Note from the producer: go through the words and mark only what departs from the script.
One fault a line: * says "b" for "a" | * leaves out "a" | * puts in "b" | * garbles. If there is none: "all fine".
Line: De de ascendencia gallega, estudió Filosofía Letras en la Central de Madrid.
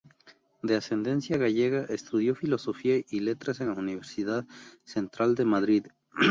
* leaves out "de"
* puts in "y"
* puts in "Universidad"